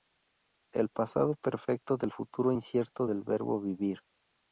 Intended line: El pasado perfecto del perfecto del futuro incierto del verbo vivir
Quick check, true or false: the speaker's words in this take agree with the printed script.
false